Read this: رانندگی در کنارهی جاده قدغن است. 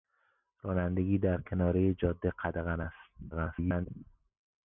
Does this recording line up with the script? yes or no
no